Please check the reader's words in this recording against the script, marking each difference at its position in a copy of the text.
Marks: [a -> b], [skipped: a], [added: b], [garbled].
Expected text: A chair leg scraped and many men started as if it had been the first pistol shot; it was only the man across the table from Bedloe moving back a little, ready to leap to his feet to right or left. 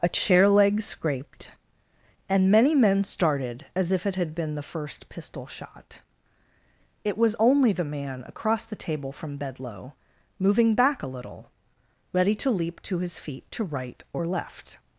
A chair leg scraped and many men started as if it had been the first pistol shot; it was only the man across the table from Bedloe moving back a little, ready to leap to his feet to right or left.